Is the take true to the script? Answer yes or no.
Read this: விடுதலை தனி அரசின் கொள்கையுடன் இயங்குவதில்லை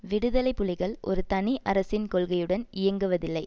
no